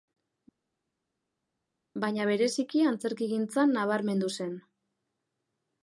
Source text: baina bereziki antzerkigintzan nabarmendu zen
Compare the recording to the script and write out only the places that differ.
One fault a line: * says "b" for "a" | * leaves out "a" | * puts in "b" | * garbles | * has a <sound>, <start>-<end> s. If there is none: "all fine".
all fine